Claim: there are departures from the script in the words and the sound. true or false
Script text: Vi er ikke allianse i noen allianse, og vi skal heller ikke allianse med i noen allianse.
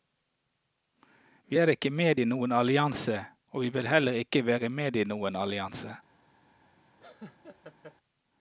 true